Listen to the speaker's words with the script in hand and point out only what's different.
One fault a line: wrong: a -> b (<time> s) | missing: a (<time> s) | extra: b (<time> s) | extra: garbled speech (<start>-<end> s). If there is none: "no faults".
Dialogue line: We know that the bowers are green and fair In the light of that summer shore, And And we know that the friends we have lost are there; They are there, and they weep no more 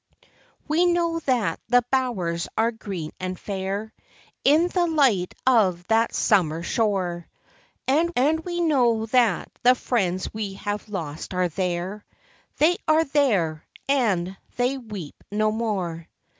no faults